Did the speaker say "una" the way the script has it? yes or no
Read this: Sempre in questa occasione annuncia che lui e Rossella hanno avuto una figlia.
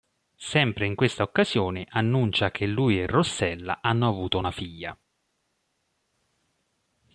yes